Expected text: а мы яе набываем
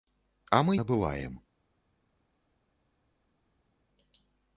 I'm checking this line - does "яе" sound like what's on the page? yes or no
no